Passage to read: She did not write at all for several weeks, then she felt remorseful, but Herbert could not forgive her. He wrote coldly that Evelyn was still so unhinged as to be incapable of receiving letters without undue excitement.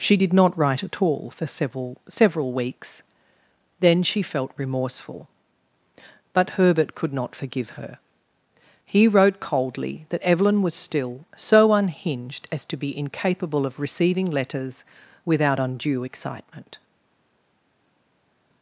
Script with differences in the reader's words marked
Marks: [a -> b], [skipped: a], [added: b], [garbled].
She did not write at all for several [added: several] weeks, then she felt remorseful, but Herbert could not forgive her. He wrote coldly that Evelyn was still so unhinged as to be incapable of receiving letters without undue excitement.